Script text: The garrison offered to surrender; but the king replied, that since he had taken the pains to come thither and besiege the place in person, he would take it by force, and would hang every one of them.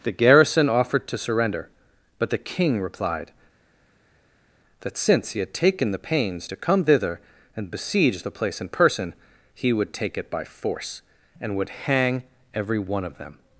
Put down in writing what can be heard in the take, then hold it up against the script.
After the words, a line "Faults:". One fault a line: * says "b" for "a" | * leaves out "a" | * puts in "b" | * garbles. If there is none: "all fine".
The garrison offered to surrender; but the king replied, that since he had taken the pains to come thither and besiege the place in person, he would take it by force, and would hang every one of them.
Faults:
all fine